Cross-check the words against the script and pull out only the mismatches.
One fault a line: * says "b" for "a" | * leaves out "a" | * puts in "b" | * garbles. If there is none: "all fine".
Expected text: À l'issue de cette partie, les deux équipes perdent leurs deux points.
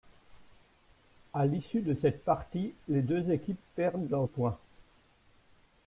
* leaves out "deux"